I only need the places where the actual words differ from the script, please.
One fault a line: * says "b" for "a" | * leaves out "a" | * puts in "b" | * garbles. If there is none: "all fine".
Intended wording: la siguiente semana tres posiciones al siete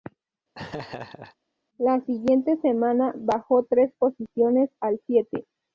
* puts in "bajó"